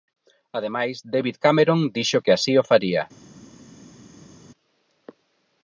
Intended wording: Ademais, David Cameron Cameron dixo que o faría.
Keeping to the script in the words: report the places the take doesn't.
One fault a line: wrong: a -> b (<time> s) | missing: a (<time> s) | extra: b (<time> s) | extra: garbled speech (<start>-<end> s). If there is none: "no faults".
missing: Cameron (1.8 s)
extra: así (2.4 s)